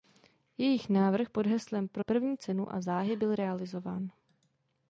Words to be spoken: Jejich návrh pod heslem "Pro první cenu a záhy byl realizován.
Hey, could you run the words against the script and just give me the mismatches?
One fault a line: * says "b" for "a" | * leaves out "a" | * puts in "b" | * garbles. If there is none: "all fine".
all fine